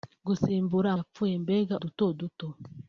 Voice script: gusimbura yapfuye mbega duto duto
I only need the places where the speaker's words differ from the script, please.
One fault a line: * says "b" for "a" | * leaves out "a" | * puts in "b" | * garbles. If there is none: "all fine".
all fine